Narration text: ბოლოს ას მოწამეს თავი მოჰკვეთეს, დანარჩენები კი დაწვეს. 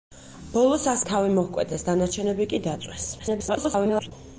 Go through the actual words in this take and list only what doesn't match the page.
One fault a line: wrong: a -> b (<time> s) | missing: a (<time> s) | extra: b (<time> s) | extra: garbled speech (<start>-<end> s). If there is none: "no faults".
missing: მოწამეს (1.0 s)
extra: garbled speech (3.2-4.1 s)